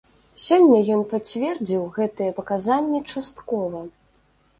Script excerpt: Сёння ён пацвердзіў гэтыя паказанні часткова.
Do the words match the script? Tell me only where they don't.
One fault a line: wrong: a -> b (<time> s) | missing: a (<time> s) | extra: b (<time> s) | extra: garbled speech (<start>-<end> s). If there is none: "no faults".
no faults